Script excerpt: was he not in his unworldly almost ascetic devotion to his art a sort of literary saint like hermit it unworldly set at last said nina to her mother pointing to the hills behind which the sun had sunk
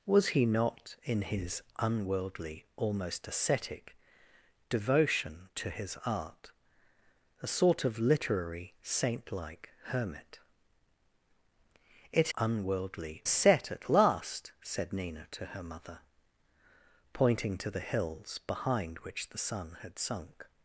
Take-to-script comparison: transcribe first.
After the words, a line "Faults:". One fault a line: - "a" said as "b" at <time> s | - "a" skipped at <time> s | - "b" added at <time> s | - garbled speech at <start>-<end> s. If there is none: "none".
was he not in his unworldly almost ascetic devotion to his art a sort of literary saint like hermit it unworldly set at last said nina to her mother pointing to the hills behind which the sun had sunk
Faults:
none